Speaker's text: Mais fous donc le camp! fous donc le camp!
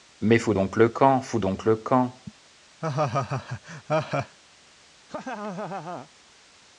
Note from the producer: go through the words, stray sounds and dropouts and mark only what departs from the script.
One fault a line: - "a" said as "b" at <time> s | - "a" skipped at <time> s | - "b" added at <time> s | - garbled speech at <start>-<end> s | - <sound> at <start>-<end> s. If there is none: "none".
- laugh at 2.8-4.4 s
- laugh at 5.1-6.1 s